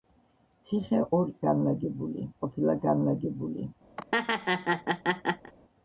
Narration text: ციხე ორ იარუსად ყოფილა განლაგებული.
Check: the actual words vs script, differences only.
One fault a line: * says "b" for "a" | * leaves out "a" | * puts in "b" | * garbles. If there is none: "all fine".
* says "განლაგებული" for "იარუსად"